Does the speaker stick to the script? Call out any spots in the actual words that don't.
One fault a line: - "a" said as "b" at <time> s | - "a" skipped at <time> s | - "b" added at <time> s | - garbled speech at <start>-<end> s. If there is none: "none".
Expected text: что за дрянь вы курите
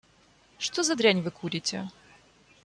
none